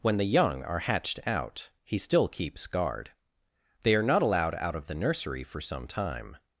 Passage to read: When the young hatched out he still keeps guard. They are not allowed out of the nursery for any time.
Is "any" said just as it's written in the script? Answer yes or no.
no